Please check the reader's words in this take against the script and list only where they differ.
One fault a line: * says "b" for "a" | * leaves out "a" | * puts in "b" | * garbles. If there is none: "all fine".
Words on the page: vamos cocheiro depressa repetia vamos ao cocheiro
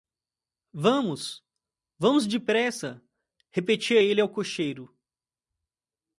* says "vamos" for "cocheiro"
* says "ele" for "vamos"